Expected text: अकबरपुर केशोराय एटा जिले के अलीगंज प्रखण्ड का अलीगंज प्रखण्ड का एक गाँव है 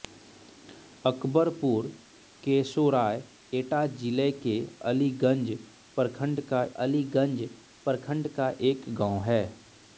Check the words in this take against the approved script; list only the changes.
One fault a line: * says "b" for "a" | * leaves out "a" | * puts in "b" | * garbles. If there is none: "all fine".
all fine